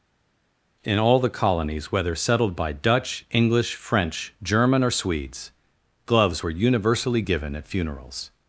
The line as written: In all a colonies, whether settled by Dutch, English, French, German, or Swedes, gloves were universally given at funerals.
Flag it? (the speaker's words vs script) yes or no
yes